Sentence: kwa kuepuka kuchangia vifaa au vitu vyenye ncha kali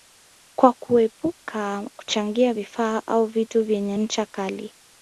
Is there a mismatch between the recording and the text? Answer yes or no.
no